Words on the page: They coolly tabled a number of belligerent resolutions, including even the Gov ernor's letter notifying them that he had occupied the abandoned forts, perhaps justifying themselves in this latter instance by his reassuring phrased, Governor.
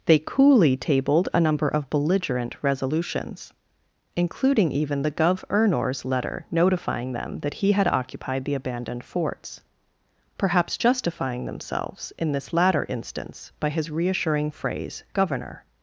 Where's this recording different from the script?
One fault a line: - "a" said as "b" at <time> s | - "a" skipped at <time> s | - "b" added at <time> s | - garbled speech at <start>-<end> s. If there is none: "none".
- "phrased" said as "phrase" at 14.5 s